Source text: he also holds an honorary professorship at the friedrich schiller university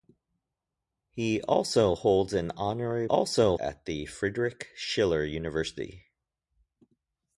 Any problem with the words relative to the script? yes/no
yes